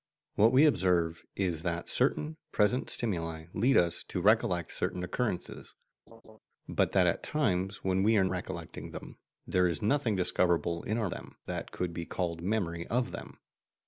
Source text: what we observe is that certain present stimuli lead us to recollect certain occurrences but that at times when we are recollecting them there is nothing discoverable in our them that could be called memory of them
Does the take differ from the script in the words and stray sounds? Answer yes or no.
yes